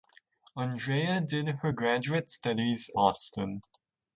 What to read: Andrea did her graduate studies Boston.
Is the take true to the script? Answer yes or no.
yes